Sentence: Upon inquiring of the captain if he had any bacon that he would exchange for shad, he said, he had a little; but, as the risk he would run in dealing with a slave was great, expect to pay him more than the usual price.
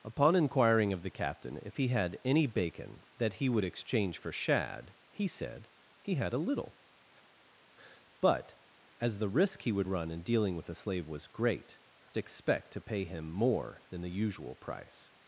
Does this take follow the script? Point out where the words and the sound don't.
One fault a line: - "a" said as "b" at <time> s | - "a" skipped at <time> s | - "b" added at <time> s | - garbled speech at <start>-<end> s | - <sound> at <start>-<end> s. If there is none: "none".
none